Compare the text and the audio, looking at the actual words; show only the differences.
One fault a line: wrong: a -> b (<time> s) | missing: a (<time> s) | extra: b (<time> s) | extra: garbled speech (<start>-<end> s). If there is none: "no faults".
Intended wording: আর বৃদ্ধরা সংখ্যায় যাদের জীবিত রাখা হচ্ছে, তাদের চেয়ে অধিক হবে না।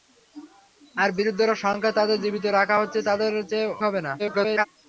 missing: অধিক (3.7 s)
extra: garbled speech (4.2-4.7 s)